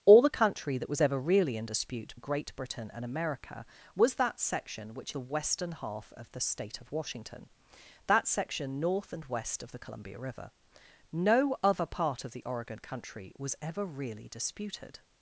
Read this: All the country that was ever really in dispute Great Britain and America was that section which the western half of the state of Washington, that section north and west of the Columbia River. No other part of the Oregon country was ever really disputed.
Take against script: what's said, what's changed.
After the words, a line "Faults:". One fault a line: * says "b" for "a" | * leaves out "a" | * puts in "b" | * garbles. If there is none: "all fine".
All the country that was ever really in dispute Great Britain and America was that section which the western half of the state of Washington, that section north and west of the Columbia River. No other part of the Oregon country was ever really disputed.
Faults:
all fine